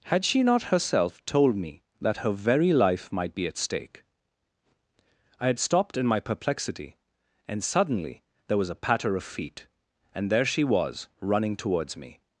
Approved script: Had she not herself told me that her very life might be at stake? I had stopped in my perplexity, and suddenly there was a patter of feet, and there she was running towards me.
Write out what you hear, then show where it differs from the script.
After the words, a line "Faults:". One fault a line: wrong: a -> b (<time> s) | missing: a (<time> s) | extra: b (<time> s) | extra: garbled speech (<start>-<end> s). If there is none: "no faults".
Had she not herself told me that her very life might be at stake? I had stopped in my perplexity, and suddenly there was a patter of feet, and there she was running towards me.
Faults:
no faults